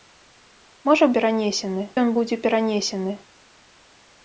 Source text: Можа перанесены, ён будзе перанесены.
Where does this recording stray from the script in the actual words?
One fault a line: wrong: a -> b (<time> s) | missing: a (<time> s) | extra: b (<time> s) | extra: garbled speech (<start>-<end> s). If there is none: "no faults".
no faults